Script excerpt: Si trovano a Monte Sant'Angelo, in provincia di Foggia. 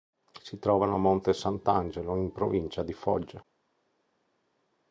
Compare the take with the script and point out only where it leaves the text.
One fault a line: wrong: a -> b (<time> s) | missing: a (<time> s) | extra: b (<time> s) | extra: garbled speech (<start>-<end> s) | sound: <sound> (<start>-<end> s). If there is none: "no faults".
no faults